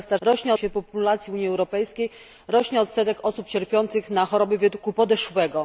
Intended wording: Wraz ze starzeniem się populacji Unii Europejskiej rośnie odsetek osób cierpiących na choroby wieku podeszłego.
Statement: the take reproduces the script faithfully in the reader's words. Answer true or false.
false